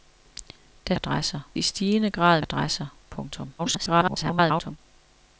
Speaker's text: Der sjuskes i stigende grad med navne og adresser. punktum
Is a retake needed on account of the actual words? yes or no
yes